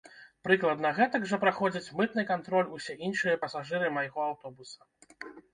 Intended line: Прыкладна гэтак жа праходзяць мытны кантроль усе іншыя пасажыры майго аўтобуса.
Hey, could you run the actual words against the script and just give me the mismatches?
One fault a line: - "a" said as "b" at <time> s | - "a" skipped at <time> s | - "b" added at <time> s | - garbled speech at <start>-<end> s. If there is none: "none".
none